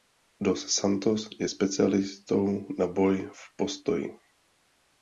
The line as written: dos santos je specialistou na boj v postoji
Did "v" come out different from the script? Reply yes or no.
no